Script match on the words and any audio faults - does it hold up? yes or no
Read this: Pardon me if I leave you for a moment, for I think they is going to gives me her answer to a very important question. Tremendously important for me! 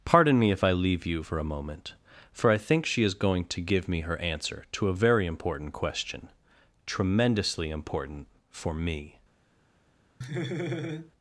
no